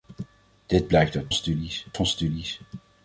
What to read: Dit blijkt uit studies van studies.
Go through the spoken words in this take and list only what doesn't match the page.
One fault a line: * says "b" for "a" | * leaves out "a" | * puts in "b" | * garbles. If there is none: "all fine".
all fine